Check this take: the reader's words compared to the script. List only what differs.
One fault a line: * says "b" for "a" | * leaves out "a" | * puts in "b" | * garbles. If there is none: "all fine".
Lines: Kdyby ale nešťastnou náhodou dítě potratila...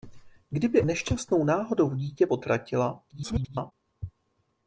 * leaves out "ale"
* garbles